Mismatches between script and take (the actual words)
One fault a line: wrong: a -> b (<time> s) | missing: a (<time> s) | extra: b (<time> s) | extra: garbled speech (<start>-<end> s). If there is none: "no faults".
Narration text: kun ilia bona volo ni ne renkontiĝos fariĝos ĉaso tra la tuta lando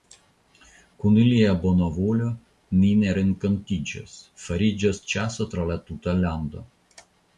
no faults